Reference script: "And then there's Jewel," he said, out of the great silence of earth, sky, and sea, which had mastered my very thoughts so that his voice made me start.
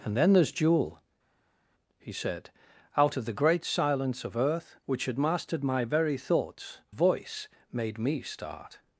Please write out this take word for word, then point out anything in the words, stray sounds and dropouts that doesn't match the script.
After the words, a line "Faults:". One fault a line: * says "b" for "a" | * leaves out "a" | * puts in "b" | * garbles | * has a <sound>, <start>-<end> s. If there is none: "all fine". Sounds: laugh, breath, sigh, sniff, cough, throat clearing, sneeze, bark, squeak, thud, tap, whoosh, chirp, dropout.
"And then there's Jewel," he said, out of the great silence of earth, which had mastered my very thoughts voice made me start.
Faults:
* leaves out "sky and sea"
* leaves out "so that his"